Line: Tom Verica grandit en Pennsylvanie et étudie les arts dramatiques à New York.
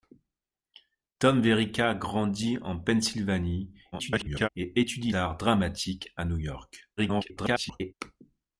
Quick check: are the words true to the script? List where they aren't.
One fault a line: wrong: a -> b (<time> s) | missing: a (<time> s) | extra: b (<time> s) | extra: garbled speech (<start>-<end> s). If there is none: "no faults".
extra: garbled speech (3.9-4.5 s)
missing: les (5.1 s)
extra: garbled speech (7.0-7.9 s)